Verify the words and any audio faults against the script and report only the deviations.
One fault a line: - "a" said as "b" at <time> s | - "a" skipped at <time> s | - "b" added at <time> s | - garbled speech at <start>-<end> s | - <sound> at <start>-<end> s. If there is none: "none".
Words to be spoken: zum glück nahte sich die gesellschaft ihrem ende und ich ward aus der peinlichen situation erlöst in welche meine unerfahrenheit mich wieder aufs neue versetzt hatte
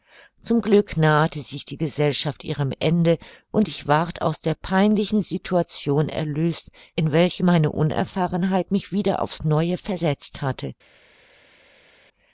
none